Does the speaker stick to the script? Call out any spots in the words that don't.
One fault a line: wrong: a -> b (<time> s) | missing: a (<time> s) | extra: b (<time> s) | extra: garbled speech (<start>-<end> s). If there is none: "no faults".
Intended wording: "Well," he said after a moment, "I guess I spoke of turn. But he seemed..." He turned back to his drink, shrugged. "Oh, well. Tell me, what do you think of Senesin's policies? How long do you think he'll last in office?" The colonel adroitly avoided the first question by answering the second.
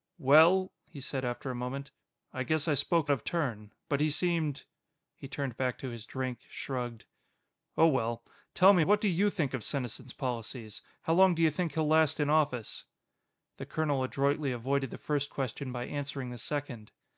no faults